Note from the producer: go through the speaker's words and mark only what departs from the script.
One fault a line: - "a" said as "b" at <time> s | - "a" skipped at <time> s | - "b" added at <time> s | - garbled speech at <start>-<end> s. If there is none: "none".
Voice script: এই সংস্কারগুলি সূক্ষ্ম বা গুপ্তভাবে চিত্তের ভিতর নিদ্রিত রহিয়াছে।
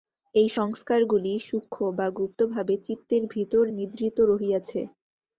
none